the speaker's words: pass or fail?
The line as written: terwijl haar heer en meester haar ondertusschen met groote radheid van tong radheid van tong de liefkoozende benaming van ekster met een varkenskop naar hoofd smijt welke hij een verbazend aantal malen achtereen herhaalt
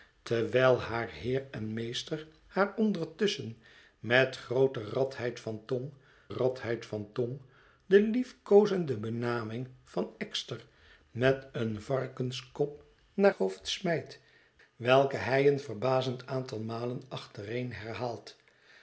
pass